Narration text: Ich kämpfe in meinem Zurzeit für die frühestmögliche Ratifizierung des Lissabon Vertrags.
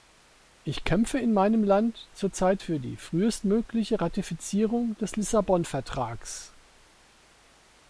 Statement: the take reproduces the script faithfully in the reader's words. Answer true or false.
false